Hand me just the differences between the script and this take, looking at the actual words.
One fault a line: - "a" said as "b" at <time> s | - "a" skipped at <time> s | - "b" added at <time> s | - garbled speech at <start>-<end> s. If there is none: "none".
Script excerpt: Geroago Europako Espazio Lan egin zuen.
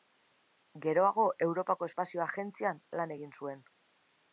- "Agentzian" added at 2.3 s